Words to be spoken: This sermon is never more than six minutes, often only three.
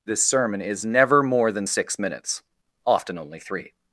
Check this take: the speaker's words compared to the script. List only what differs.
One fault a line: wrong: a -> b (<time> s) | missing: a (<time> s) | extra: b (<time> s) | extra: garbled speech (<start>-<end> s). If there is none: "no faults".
no faults